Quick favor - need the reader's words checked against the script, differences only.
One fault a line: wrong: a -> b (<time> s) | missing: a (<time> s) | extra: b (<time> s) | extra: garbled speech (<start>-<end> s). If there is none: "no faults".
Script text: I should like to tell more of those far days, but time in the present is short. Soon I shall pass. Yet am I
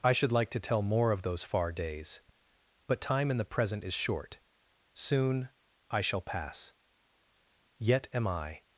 no faults